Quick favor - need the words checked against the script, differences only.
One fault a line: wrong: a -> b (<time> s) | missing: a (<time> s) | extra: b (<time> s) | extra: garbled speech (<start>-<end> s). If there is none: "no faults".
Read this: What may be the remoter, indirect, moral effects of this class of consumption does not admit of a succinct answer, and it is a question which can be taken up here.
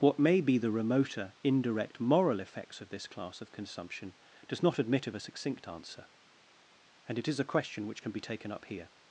no faults